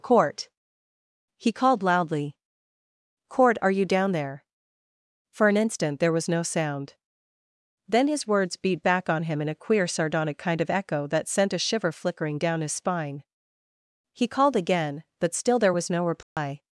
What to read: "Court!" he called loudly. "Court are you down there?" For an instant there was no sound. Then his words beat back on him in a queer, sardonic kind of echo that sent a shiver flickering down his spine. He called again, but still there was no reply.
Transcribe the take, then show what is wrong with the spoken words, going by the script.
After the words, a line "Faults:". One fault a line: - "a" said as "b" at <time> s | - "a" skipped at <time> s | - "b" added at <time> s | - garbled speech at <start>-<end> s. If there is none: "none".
"Court!" he called loudly. "Court are you down there?" For an instant there was no sound. Then his words beat back on him in a queer, sardonic kind of echo that sent a shiver flickering down his spine. He called again, but still there was no reply.
Faults:
none